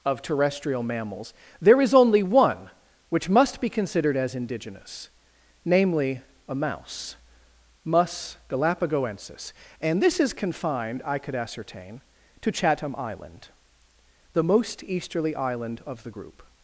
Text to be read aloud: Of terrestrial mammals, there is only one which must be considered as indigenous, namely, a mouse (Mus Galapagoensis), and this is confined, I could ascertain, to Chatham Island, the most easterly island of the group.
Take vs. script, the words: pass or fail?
pass